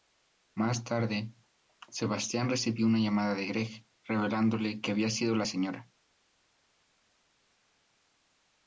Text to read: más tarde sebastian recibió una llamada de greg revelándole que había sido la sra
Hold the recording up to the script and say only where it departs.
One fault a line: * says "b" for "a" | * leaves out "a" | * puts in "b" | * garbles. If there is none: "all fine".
all fine